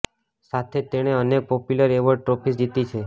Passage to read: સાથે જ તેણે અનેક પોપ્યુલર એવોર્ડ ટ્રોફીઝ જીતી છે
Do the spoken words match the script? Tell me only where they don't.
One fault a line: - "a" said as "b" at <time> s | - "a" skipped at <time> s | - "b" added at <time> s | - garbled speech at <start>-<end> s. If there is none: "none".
none